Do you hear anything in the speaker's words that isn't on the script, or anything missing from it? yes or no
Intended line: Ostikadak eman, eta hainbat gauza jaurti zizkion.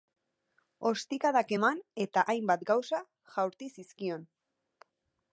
no